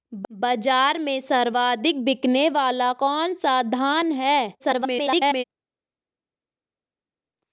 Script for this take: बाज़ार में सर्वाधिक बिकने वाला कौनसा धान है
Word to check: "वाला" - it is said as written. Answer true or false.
true